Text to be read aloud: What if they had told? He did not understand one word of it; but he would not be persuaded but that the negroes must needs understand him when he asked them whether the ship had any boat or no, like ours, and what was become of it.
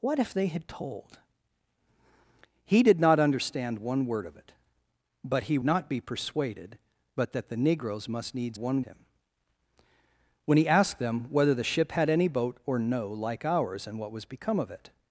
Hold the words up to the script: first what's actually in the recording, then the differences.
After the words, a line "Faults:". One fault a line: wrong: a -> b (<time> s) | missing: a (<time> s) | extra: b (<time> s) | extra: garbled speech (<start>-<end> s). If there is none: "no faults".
What if they had told? He did not understand one word of it; but he not be persuaded but that the negroes must needs one him when he asked them whether the ship had any boat or no, like ours, and what was become of it.
Faults:
missing: would (5.6 s)
wrong: understand -> one (8.6 s)